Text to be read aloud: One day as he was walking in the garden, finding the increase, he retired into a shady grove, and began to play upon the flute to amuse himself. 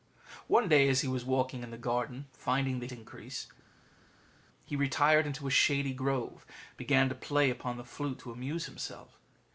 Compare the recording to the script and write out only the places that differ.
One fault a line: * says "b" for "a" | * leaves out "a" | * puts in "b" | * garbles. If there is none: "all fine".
all fine